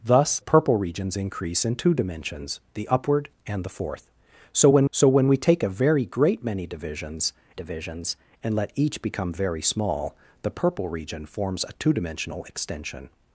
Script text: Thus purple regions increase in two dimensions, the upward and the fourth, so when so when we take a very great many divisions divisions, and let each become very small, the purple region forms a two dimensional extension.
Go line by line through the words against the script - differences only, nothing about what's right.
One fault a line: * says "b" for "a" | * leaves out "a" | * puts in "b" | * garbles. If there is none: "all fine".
all fine